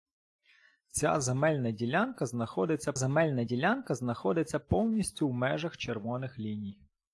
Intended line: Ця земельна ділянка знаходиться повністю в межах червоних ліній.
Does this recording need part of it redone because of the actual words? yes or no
yes